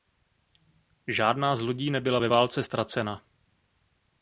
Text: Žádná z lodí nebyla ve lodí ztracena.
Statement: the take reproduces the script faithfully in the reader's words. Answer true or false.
false